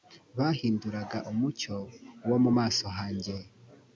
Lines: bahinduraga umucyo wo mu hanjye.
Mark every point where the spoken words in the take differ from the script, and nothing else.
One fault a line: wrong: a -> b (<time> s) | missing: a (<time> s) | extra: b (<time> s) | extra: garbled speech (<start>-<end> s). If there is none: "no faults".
extra: maso (2.6 s)